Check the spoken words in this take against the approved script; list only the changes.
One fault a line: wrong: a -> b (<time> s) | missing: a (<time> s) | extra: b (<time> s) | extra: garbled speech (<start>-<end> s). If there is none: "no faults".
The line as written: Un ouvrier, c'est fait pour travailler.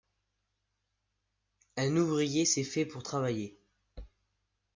no faults